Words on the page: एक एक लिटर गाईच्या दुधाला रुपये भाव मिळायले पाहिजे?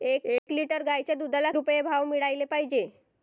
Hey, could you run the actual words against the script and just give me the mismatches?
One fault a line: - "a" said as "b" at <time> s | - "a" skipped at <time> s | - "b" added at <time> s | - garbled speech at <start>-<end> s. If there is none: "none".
none